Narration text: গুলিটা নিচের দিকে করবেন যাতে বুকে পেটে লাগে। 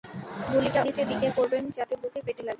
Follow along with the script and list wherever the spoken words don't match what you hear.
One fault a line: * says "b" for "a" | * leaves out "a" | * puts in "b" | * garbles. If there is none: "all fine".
all fine